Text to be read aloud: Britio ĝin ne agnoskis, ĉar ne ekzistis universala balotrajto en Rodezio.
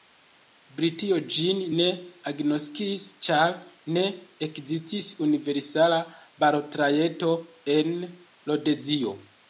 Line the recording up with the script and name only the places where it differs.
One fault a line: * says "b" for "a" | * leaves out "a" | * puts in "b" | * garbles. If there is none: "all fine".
all fine